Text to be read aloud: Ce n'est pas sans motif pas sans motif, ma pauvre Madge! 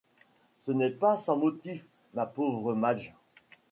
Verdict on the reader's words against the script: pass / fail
fail